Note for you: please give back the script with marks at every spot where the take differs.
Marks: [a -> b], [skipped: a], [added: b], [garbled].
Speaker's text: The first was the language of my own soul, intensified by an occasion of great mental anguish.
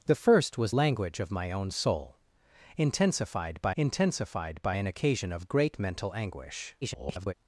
The first was [skipped: the] language of my own soul, intensified by [added: intensified by] an occasion of great mental anguish. [garbled]